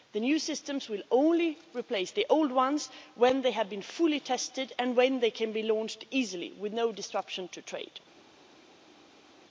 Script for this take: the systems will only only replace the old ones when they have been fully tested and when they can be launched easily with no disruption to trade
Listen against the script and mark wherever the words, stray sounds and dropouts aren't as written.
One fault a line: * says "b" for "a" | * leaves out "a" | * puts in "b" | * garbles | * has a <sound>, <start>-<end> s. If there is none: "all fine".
* puts in "new"
* leaves out "only"